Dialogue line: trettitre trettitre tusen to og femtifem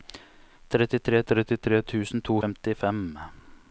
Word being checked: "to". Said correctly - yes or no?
yes